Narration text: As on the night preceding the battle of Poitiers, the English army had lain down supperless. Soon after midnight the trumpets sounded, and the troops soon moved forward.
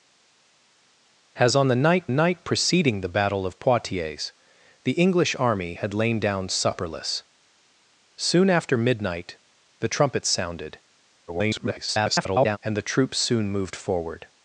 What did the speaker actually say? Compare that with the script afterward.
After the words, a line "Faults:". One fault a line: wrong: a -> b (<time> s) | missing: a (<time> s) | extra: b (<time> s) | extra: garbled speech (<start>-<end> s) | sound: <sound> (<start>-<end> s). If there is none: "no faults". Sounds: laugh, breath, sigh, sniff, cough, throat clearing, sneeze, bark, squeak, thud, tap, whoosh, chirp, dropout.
As on the night night preceding the battle of Poitiers, the English army had lain down supperless. Soon after midnight the trumpets sounded, [garbled] and the troops soon moved forward.
Faults:
extra: night (2.1 s)
extra: garbled speech (11.3-12.6 s)